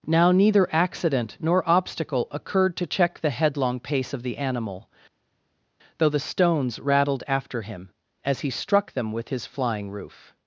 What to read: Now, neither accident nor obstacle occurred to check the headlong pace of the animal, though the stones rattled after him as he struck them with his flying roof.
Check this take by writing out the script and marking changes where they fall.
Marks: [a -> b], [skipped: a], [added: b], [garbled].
Now, neither accident nor obstacle occurred to check the headlong pace of the animal, though the stones rattled after him as he struck them with his flying roof.